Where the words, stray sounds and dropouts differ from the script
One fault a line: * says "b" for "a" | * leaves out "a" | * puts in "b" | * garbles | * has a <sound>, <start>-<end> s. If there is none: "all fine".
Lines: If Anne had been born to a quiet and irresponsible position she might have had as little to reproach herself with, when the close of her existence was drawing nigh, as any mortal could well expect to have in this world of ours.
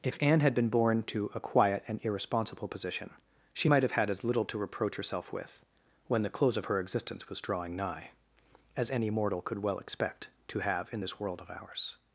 all fine